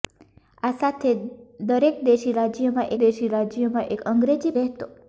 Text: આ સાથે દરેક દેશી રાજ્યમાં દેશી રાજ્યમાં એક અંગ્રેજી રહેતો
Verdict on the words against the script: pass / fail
pass